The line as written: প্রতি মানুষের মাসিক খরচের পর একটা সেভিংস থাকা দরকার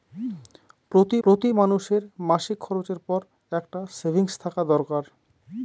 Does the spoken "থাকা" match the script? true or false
true